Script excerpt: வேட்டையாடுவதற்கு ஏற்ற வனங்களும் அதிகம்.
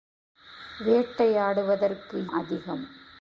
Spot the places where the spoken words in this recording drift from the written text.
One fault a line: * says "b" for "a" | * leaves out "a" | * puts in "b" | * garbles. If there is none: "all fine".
* leaves out "ஏற்ற வனங்களும்"